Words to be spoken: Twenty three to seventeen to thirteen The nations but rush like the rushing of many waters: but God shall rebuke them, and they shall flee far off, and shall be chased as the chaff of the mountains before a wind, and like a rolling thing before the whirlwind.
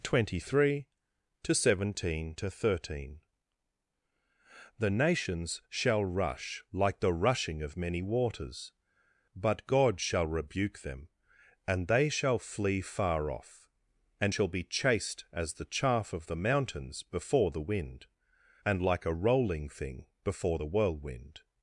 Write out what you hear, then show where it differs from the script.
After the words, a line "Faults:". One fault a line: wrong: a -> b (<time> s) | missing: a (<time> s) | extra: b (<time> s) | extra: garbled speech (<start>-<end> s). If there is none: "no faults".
Twenty three to seventeen to thirteen The nations shall rush like the rushing of many waters: but God shall rebuke them, and they shall flee far off, and shall be chased as the chaff of the mountains before the wind, and like a rolling thing before the whirlwind.
Faults:
wrong: but -> shall (5.7 s)
wrong: a -> the (17.5 s)